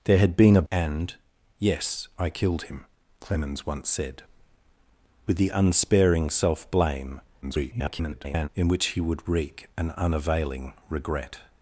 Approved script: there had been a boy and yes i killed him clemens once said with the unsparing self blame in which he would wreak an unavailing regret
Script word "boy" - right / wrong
wrong